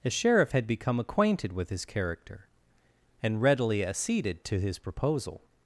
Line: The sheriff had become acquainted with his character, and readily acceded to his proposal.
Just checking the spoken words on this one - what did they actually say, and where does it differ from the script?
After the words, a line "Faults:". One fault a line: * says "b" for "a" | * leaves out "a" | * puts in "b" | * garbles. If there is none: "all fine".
The sheriff had become acquainted with his character, and readily acceded to his proposal.
Faults:
all fine